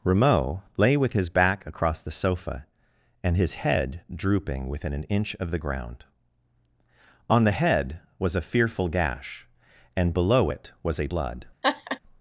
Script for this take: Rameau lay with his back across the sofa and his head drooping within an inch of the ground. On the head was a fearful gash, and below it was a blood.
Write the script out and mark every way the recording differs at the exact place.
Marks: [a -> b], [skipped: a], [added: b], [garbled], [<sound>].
Rameau lay with his back across the sofa and his head drooping within an inch of the ground. On the head was a fearful gash, and below it was a blood. [laugh]